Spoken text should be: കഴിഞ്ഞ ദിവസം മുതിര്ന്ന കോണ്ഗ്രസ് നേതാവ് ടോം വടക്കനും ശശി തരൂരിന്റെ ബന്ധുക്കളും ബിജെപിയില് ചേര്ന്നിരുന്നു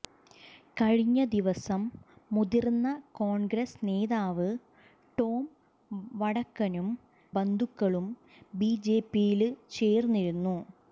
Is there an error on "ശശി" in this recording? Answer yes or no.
yes